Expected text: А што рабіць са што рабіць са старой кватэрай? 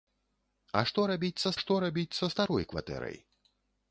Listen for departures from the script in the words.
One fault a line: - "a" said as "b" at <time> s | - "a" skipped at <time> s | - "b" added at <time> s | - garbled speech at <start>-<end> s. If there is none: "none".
none